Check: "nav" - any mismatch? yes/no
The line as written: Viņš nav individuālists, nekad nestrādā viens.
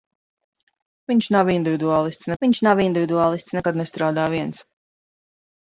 no